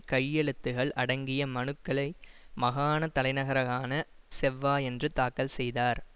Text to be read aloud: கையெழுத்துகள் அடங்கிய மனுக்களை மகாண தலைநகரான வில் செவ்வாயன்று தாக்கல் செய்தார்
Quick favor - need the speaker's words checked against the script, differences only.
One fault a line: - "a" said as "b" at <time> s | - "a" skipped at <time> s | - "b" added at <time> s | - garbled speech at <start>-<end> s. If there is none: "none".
- "வில்" skipped at 3.9 s